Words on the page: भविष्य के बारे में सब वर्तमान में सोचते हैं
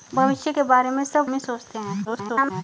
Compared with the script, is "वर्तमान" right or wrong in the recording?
wrong